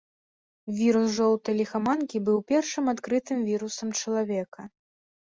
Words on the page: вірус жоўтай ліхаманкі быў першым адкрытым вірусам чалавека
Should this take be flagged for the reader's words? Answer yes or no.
no